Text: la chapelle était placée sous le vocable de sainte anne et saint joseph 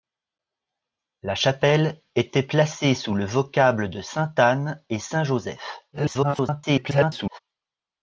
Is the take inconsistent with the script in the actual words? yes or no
yes